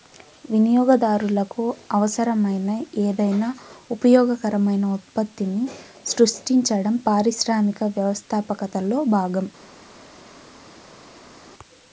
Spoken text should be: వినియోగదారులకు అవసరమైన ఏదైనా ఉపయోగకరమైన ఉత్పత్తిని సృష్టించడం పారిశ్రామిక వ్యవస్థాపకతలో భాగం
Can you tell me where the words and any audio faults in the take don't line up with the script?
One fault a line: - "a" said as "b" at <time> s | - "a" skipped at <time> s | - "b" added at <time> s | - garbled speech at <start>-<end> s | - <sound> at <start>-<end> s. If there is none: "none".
none